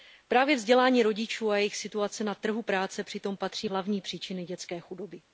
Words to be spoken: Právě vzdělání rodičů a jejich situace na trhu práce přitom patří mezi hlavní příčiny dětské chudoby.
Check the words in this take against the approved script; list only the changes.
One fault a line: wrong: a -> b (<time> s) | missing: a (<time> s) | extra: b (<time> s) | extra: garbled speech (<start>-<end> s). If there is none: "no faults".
missing: mezi (3.7 s)